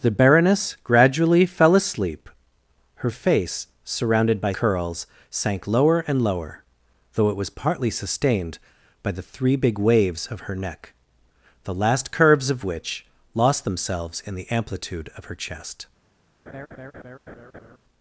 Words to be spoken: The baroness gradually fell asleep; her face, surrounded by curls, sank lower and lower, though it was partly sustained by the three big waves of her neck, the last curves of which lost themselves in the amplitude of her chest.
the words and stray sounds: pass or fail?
fail